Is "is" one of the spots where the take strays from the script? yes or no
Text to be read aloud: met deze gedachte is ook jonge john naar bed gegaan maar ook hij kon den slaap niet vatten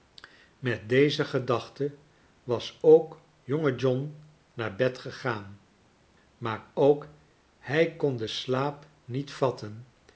yes